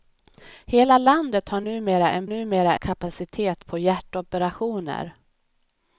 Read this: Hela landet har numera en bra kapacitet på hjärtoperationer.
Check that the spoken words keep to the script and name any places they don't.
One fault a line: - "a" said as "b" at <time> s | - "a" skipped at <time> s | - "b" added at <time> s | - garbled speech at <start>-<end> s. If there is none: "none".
- "bra" said as "numera" at 2.2 s